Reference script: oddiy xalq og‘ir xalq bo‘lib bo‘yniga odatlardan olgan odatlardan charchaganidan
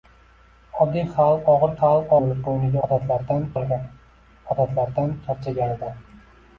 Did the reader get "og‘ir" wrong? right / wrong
right